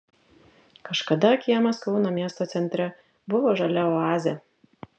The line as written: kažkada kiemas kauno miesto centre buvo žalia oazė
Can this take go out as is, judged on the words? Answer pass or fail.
pass